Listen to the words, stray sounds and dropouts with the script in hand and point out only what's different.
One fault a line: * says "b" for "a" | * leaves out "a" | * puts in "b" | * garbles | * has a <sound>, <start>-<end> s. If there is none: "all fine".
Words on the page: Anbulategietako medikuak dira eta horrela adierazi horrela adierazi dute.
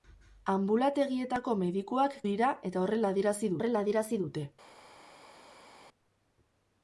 all fine